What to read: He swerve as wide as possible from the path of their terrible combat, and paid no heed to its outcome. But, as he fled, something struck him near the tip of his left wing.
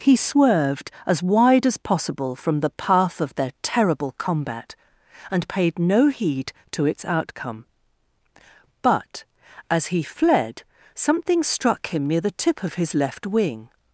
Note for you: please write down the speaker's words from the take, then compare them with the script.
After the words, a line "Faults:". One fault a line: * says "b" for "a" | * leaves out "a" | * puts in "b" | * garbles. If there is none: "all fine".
He swerved as wide as possible from the path of their terrible combat, and paid no heed to its outcome. But, as he fled, something struck him near the tip of his left wing.
Faults:
* says "swerved" for "swerve"